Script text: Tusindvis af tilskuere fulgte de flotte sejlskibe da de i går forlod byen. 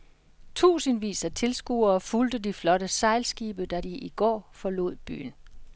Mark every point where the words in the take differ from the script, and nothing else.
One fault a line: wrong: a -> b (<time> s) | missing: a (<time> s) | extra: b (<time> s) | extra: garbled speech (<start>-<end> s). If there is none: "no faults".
no faults